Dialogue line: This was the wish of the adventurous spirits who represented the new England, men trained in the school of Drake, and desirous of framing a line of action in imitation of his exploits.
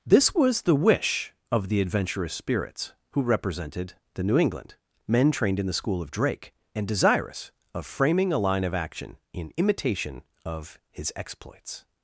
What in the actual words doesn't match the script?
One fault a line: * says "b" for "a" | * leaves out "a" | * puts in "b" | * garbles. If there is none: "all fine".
all fine